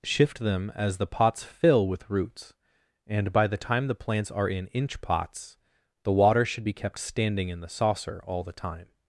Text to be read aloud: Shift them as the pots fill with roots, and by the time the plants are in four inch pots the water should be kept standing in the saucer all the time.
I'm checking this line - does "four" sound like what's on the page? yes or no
no